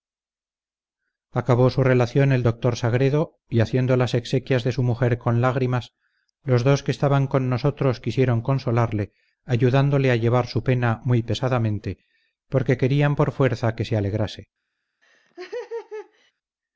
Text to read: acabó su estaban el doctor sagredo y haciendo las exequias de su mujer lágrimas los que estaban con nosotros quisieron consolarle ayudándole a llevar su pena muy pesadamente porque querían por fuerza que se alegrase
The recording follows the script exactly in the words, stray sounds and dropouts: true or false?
false